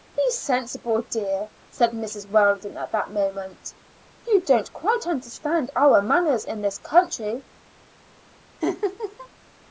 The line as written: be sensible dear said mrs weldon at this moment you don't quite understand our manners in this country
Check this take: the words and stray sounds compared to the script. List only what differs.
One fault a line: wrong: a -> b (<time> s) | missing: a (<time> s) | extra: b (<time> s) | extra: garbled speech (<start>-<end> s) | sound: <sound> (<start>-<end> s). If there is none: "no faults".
wrong: this -> that (2.9 s)
sound: laugh (8.6-9.3 s)